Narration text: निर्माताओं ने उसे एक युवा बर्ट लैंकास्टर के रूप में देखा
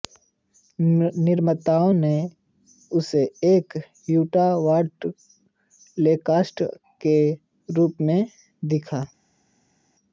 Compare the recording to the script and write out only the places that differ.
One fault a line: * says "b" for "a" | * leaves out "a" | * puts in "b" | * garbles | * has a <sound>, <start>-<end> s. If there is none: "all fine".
all fine